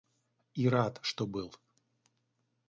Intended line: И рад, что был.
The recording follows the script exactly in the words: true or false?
true